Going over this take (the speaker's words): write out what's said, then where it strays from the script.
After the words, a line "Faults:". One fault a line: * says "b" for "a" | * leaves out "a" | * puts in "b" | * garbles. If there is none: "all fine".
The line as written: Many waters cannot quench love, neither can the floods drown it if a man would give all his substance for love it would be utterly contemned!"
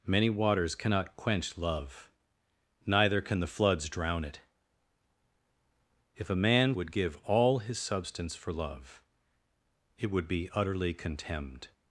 Many waters cannot quench love, neither can the floods drown it if a man would give all his substance for love it would be utterly contemned!"
Faults:
all fine